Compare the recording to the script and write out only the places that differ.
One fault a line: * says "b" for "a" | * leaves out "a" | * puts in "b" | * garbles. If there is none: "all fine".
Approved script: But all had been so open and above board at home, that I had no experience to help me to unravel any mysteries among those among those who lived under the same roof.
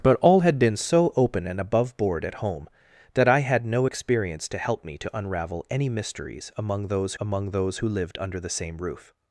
all fine